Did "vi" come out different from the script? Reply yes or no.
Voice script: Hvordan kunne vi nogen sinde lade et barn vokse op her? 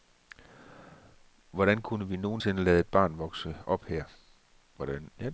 no